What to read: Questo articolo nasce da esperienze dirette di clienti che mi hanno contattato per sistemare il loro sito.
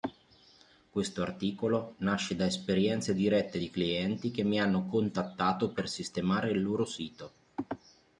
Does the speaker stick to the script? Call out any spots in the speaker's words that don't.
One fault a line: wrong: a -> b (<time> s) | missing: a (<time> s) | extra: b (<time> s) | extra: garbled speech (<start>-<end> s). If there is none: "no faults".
no faults